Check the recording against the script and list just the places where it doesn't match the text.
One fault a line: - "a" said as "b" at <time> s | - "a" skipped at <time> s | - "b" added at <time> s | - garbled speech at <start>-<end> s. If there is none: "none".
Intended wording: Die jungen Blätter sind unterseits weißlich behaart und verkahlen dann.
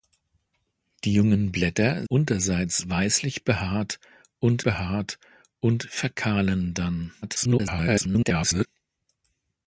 - "sind" skipped at 2.1 s
- "behaart und" added at 4.6 s
- garbled speech at 7.2-8.7 s